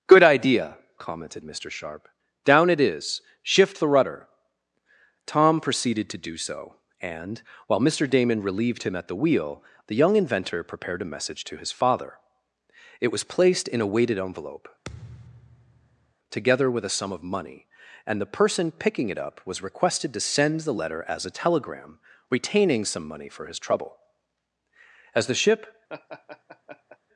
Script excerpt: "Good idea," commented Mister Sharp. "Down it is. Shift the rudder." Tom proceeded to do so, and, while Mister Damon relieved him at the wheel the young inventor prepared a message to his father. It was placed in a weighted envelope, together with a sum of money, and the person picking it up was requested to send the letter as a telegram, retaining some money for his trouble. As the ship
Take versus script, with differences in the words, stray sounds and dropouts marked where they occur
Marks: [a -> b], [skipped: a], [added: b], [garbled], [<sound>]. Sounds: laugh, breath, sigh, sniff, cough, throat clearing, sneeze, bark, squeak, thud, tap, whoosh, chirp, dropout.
"Good idea," commented Mister Sharp. "Down it is. Shift the rudder." Tom proceeded to do so, and, while Mister Damon relieved him at the wheel the young inventor prepared a message to his father. It was placed in a weighted envelope, [thud] together with a sum of money, and the person picking it up was requested to send the letter as a telegram, retaining some money for his trouble. As the ship [laugh]